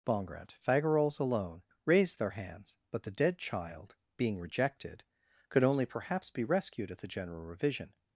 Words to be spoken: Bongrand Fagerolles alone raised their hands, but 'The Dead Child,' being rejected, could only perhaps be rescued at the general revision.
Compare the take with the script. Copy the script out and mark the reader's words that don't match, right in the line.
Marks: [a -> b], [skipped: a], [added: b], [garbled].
Bongrand Fagerolles alone raised their hands, but 'The Dead Child,' being rejected, could only perhaps be rescued at the general revision.